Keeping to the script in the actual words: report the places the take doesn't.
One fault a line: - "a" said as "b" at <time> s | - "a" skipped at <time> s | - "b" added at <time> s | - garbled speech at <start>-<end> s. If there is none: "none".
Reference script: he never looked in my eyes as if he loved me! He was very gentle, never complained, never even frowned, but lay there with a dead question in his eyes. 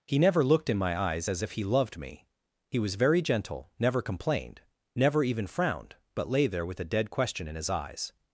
none